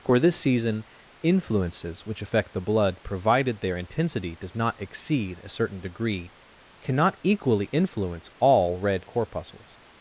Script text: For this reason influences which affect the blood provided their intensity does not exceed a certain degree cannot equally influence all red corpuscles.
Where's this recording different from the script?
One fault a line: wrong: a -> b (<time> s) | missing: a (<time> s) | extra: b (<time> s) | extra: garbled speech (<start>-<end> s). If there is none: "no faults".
wrong: reason -> season (0.3 s)